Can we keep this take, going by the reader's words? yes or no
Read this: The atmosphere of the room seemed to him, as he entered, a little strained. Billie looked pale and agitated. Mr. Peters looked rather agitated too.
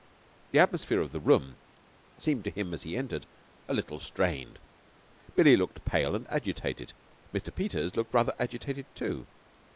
yes